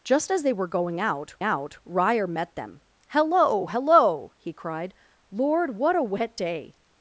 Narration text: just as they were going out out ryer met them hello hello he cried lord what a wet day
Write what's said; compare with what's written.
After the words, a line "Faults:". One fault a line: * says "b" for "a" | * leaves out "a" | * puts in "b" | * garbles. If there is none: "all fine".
just as they were going out out ryer met them hello hello he cried lord what a wet day
Faults:
all fine